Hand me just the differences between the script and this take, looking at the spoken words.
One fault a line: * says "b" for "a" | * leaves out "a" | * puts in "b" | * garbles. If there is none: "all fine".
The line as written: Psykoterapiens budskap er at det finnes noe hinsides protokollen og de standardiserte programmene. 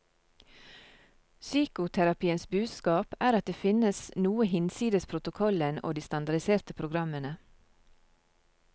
all fine